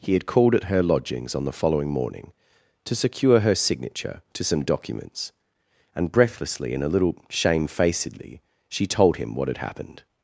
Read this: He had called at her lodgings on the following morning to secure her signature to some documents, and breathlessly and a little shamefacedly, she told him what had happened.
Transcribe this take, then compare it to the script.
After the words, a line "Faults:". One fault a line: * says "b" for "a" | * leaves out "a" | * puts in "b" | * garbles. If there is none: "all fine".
He had called at her lodgings on the following morning to secure her signature to some documents, and breathlessly and a little shamefacedly, she told him what had happened.
Faults:
all fine